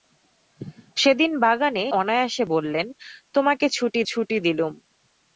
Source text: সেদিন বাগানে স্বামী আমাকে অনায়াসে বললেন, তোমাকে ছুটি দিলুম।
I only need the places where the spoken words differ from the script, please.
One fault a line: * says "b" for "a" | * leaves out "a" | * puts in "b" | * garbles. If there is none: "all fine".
* leaves out "স্বামী আমাকে"
* puts in "ছুটি"